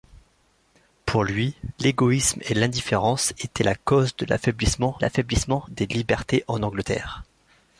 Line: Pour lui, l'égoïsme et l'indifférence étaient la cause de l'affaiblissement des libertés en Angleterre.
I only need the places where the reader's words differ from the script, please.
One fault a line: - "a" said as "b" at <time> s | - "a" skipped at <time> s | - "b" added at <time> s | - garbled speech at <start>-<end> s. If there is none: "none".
- "l'affaiblissement" added at 5.0 s